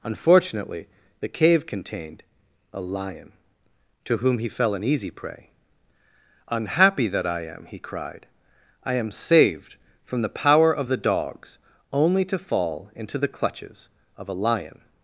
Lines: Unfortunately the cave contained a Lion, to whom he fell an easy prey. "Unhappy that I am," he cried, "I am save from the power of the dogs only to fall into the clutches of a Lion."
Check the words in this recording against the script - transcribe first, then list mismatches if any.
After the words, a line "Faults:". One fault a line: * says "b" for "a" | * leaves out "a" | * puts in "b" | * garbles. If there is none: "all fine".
Unfortunately the cave contained a Lion, to whom he fell an easy prey. "Unhappy that I am," he cried, "I am saved from the power of the dogs only to fall into the clutches of a Lion."
Faults:
* says "saved" for "save"